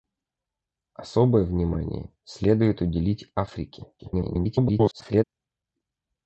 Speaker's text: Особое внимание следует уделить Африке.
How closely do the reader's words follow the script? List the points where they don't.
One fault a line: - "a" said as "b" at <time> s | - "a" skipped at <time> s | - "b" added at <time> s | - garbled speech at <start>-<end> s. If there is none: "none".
- garbled speech at 4.0-5.2 s